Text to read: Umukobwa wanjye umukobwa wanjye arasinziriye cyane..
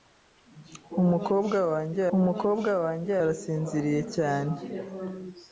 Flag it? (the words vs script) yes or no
no